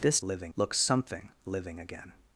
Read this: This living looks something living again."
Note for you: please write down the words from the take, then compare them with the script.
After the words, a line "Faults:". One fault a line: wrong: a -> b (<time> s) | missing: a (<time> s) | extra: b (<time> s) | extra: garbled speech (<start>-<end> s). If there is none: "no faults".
This living looks something living again."
Faults:
no faults